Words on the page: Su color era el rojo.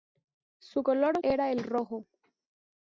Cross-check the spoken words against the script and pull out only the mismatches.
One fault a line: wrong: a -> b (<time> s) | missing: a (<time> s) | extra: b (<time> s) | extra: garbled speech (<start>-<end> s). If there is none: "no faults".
no faults